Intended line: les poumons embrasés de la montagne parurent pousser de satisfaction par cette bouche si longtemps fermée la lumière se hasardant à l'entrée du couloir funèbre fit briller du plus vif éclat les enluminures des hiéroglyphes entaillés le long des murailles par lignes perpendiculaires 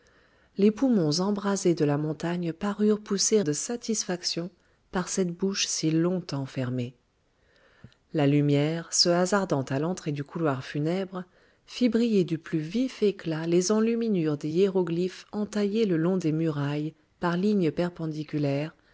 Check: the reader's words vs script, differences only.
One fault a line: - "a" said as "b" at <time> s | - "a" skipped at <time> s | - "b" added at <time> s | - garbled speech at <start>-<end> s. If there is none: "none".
none